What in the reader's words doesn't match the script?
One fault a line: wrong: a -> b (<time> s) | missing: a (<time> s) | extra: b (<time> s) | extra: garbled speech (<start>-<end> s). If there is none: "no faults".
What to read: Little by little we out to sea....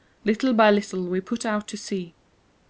extra: put (1.2 s)